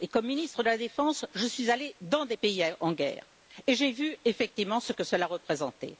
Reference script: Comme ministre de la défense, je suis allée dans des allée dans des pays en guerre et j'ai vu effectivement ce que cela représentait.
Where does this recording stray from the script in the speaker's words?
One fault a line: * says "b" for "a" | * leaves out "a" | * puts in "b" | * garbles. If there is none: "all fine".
* leaves out "allée dans des"